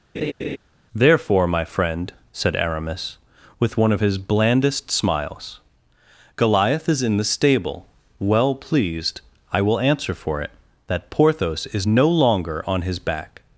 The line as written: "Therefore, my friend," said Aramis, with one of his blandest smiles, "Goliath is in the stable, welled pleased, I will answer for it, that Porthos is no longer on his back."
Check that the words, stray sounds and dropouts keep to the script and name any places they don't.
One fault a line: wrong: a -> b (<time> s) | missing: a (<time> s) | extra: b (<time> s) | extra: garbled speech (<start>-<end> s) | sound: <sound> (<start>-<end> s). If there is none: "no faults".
sound: laugh (0.1-0.6 s)
wrong: welled -> well (8.2 s)